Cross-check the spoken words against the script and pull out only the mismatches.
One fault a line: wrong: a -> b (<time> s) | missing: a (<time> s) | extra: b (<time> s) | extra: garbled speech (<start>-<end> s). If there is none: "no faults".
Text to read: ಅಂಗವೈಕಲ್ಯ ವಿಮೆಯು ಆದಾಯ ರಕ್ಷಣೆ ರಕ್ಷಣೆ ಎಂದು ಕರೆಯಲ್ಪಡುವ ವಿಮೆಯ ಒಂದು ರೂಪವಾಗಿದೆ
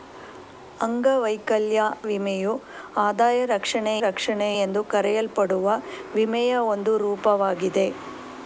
no faults